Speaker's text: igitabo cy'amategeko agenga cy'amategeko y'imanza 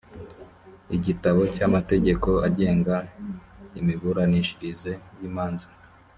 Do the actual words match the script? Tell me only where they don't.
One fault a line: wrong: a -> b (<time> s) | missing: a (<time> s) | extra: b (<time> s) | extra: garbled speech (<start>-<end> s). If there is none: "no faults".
wrong: cy'amategeko -> imiburanishirize (3.8 s)